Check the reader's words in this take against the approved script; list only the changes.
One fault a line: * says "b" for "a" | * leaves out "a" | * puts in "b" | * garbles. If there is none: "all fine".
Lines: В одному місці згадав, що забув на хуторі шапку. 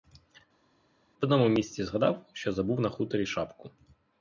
all fine